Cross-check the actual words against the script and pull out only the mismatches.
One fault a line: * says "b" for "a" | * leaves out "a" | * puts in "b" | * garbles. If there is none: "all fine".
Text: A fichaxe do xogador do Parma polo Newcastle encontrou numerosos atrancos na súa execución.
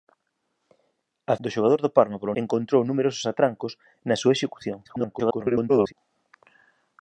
* leaves out "fichaxe"
* leaves out "Newcastle"
* garbles